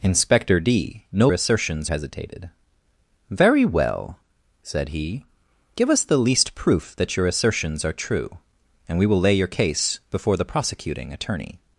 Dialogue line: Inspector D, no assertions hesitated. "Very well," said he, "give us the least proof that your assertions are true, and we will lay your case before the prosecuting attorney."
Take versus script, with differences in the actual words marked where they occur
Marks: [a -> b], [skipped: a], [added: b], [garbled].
Inspector D, no assertions hesitated. "Very well," said he, "give us the least proof that your assertions are true, and we will lay your case before the prosecuting attorney."